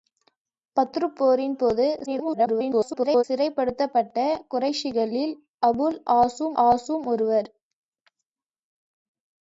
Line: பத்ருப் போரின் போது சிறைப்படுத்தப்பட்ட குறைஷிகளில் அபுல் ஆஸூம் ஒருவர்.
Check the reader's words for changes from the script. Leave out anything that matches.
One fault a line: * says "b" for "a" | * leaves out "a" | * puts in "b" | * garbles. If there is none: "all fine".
* garbles
* puts in "ஆஸூம்"